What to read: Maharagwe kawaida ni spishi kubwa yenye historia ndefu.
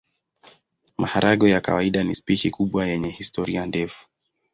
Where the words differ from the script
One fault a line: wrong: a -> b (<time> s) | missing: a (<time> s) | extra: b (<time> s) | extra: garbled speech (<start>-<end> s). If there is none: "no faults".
extra: ya (1.5 s)